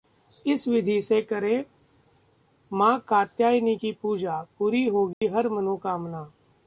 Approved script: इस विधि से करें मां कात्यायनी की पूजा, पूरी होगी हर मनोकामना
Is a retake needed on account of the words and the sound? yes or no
yes